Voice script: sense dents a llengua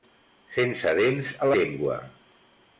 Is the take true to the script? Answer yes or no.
yes